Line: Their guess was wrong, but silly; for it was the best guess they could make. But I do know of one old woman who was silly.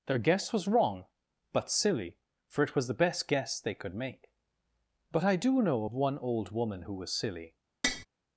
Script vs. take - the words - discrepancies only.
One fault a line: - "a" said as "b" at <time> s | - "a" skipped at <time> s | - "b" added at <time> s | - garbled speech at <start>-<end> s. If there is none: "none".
none